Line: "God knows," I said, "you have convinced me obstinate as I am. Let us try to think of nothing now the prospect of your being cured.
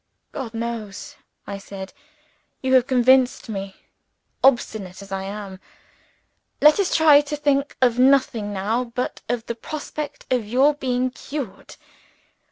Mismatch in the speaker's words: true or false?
true